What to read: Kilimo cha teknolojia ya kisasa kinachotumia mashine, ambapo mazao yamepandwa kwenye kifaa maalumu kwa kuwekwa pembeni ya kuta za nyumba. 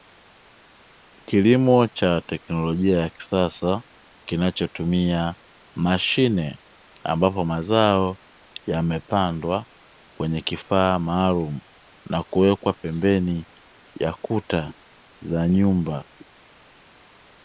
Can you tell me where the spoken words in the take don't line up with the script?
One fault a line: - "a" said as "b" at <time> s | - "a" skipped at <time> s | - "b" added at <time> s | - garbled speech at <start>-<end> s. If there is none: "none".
- "kwa" said as "na" at 12.1 s